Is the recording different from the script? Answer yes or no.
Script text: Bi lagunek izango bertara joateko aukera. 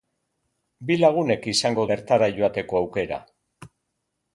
no